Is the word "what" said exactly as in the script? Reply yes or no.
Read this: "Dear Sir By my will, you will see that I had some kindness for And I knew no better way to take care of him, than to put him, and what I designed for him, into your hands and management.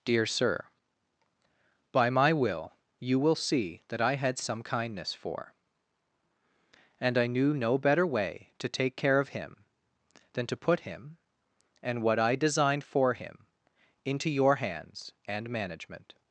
yes